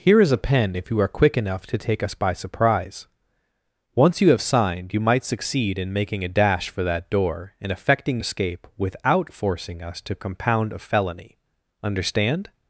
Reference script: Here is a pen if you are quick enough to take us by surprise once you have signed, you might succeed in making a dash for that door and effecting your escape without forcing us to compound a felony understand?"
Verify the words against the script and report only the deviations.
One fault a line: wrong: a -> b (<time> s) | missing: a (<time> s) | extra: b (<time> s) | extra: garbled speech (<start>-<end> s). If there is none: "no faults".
missing: your (8.2 s)